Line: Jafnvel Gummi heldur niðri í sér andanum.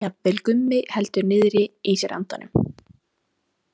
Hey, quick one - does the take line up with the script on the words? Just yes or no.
yes